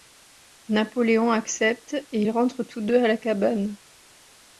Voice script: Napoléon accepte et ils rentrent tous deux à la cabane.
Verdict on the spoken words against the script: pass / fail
pass